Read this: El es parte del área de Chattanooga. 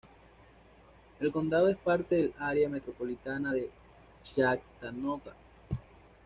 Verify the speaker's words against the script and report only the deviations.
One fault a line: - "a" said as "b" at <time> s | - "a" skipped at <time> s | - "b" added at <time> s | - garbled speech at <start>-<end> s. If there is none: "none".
- "condado" added at 1.3 s
- "metropolitana" added at 2.7 s